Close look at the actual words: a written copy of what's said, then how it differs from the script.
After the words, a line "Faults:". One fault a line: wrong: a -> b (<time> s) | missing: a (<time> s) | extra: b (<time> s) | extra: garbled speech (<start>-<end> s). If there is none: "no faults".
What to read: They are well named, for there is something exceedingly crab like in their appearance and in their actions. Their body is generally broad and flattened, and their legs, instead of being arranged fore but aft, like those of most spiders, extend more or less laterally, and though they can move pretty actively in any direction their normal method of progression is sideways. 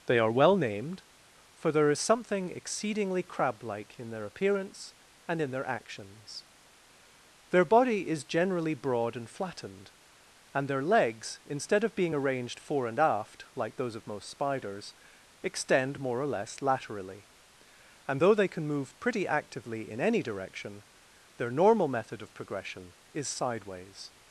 They are well named, for there is something exceedingly crab like in their appearance and in their actions. Their body is generally broad and flattened, and their legs, instead of being arranged fore and aft, like those of most spiders, extend more or less laterally, and though they can move pretty actively in any direction their normal method of progression is sideways.
Faults:
wrong: but -> and (12.9 s)